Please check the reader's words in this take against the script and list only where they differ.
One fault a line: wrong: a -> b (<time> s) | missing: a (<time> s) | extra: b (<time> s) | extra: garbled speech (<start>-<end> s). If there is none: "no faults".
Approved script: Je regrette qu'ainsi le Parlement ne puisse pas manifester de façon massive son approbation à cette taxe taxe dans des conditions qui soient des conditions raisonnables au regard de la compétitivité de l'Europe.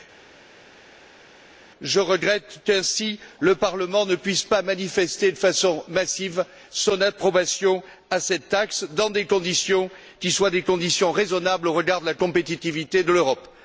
missing: taxe (8.8 s)